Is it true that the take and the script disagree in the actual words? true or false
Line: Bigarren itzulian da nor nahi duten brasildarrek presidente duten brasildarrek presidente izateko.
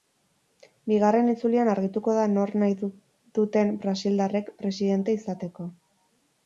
true